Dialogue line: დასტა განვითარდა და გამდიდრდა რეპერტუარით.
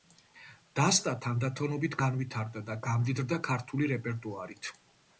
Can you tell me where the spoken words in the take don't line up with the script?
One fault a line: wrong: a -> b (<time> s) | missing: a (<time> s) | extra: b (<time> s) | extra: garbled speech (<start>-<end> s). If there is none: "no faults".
extra: თანდათანობით (1.2 s)
extra: ქართული (3.5 s)